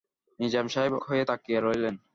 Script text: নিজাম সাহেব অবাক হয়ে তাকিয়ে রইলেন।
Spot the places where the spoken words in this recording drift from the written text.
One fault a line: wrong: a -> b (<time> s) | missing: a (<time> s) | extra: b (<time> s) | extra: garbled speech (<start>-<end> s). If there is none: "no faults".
missing: অবাক (0.9 s)